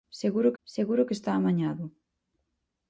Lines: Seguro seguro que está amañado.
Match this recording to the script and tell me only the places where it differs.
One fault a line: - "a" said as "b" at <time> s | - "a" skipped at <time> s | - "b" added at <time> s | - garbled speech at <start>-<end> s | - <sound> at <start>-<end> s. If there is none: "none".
none